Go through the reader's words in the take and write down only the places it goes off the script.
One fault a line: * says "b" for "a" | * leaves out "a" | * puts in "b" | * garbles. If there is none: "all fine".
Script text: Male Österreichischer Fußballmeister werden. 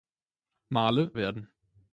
* leaves out "Österreichischer Fußballmeister"